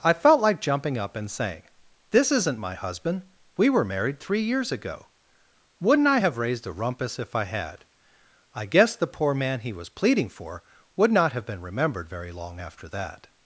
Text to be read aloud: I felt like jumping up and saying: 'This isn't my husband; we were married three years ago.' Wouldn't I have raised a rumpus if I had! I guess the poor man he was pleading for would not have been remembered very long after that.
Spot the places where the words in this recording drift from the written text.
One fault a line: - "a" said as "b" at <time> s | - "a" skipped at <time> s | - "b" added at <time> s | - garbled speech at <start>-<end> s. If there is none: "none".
none